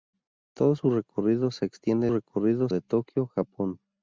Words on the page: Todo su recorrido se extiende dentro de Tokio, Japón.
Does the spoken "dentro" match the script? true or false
false